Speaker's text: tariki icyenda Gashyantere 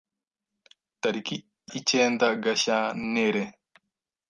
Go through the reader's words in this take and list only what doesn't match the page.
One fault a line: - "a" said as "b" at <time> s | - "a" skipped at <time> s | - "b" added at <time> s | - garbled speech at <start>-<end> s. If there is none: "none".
none